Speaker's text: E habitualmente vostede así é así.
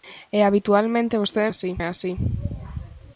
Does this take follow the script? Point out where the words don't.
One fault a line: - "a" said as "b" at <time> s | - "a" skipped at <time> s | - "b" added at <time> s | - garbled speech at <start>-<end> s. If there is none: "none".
none